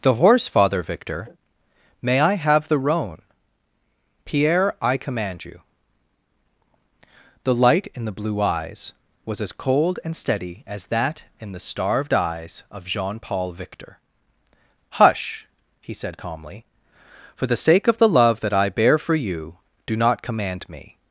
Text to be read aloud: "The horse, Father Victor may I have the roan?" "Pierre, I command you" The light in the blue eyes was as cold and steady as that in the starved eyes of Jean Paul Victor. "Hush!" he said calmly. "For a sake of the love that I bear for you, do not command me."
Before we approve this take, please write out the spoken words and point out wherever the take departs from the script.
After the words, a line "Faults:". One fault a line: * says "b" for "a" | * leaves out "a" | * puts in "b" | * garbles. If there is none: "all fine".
"The horse, Father Victor may I have the roan?" "Pierre, I command you" The light in the blue eyes was as cold and steady as that in the starved eyes of Jean Paul Victor. "Hush!" he said calmly. "For the sake of the love that I bear for you, do not command me."
Faults:
* says "the" for "a"